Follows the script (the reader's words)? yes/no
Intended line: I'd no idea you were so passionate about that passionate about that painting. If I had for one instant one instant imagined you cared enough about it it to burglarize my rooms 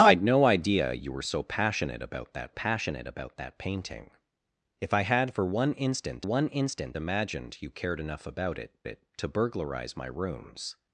yes